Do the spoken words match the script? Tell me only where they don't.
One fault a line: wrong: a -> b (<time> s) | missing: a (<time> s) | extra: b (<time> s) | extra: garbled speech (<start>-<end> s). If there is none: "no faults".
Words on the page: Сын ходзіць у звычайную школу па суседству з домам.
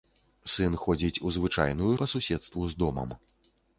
missing: школу (1.9 s)